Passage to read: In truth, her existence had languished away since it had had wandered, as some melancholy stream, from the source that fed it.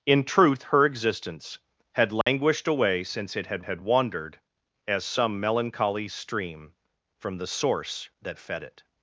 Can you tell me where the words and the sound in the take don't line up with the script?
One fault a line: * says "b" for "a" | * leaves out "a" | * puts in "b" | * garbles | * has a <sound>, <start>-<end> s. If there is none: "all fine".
* has a dropout, 2.2-2.3 s